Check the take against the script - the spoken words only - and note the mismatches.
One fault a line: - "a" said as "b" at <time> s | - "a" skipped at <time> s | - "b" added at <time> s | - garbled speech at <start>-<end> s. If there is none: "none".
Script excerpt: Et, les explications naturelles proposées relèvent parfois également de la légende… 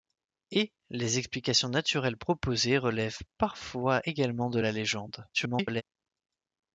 - garbled speech at 5.3-5.8 s